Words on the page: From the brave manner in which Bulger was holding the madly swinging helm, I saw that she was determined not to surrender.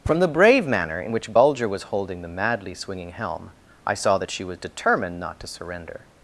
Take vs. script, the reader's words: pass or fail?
pass